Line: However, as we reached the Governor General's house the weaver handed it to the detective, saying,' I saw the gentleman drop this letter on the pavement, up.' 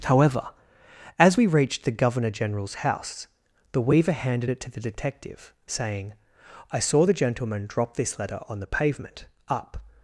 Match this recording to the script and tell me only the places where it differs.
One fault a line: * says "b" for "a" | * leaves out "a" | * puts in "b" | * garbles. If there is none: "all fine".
all fine